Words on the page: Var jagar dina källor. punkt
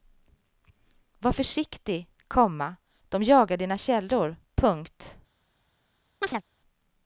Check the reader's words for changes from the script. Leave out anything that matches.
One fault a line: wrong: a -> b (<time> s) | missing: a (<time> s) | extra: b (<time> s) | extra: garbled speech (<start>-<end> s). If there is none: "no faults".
extra: försiktig komma de (1.3 s)